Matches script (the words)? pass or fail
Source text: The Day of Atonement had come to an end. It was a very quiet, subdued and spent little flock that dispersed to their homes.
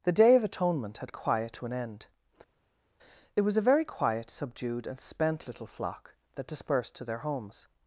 fail